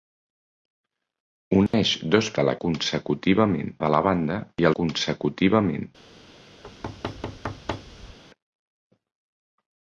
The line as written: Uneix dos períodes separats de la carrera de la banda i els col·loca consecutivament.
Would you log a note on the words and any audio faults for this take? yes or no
yes